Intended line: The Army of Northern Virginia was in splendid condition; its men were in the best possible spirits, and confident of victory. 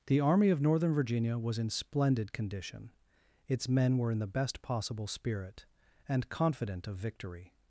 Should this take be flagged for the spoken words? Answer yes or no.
yes